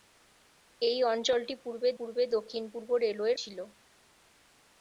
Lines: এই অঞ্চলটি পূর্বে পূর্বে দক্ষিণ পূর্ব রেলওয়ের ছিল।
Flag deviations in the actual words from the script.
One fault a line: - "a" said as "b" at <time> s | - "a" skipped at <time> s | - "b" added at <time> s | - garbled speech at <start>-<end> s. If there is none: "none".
none